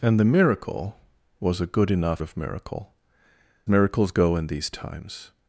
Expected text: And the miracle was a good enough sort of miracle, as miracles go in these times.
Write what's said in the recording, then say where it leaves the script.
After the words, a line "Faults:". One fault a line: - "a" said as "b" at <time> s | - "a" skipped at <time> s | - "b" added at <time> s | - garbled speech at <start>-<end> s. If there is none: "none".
And the miracle was a good enough of miracle, miracles go in these times.
Faults:
- "sort" skipped at 2.2 s
- "as" skipped at 2.9 s